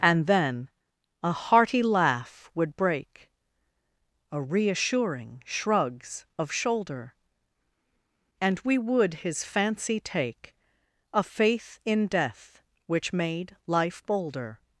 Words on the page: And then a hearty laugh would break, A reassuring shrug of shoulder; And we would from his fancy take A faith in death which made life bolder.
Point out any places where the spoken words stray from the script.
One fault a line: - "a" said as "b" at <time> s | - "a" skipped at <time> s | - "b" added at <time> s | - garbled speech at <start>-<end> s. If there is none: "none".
- "shrug" said as "shrugs" at 5.5 s
- "from" skipped at 9.2 s